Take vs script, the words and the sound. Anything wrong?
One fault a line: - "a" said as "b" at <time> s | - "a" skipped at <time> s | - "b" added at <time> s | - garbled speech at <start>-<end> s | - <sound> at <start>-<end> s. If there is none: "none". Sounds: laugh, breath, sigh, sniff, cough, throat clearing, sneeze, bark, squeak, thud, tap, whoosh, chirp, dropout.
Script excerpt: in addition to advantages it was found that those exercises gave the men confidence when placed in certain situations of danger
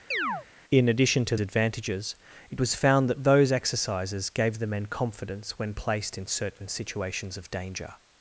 - chirp at 0.1-0.5 s